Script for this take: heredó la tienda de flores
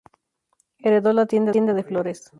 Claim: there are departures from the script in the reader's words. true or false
true